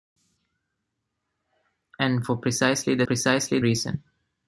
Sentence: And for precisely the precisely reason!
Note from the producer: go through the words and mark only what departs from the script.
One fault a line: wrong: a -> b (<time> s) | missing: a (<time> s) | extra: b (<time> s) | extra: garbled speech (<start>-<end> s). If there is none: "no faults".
no faults